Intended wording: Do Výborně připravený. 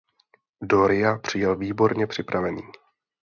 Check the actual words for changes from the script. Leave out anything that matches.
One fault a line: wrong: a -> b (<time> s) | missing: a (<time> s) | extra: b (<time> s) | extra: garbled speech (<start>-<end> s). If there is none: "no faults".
extra: Ria přijel (0.9 s)